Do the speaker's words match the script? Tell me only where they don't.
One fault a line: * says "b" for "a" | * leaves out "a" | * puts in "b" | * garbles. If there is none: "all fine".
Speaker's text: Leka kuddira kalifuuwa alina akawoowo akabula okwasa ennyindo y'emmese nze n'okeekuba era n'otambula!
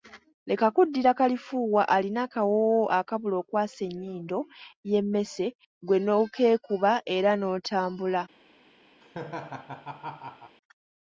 * says "ggwe" for "nze"